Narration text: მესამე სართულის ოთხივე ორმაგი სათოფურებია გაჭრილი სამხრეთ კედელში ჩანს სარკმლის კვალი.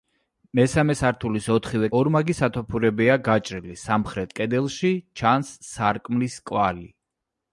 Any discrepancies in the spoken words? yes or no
no